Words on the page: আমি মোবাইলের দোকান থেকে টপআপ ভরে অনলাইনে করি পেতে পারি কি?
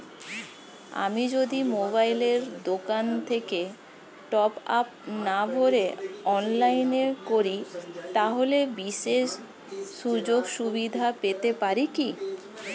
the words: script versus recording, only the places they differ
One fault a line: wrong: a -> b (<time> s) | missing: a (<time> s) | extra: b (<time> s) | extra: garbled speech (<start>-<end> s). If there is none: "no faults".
extra: যদি (1.4 s)
extra: না (5.2 s)
extra: তাহলে বিশেষ সুযোগসুবিধা (8.1 s)